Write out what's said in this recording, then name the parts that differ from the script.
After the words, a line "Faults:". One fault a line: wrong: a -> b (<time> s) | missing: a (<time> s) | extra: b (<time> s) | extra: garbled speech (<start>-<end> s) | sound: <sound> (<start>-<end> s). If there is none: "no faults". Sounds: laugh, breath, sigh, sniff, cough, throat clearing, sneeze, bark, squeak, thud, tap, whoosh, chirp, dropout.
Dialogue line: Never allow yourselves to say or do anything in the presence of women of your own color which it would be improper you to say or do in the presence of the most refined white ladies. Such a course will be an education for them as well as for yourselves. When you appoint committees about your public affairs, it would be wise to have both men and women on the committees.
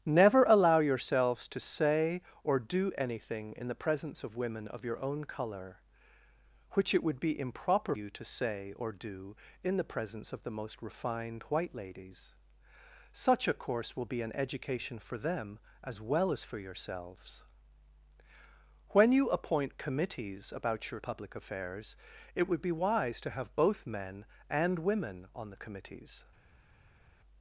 Never allow yourselves to say or do anything in the presence of women of your own color which it would be improper you to say or do in the presence of the most refined white ladies. Such a course will be an education for them as well as for yourselves. When you appoint committees about your public affairs, it would be wise to have both men and women on the committees.
Faults:
no faults